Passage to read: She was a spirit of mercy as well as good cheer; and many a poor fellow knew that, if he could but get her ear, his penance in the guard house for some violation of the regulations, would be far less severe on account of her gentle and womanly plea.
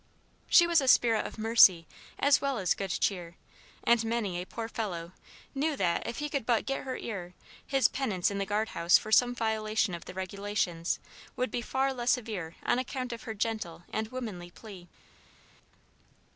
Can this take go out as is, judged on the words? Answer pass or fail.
pass